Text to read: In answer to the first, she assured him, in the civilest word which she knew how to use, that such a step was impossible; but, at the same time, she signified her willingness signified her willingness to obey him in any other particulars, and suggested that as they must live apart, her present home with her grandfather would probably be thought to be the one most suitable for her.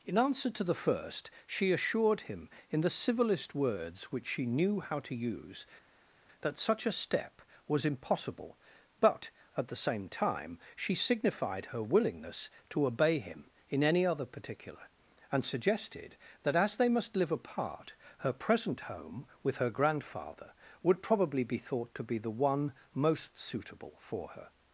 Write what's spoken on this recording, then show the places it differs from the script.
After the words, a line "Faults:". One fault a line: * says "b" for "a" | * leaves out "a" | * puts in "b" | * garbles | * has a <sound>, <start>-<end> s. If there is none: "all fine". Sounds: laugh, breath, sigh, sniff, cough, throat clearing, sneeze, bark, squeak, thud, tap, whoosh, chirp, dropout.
In answer to the first, she assured him, in the civilest words which she knew how to use, that such a step was impossible; but, at the same time, she signified her willingness to obey him in any other particular, and suggested that as they must live apart, her present home with her grandfather would probably be thought to be the one most suitable for her.
Faults:
* says "words" for "word"
* leaves out "signified her willingness"
* says "particular" for "particulars"